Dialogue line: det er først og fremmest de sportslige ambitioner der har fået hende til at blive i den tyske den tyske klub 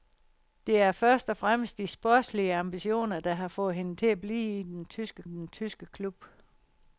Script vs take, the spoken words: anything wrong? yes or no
no